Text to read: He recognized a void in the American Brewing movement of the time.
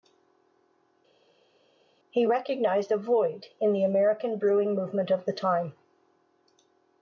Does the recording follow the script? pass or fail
pass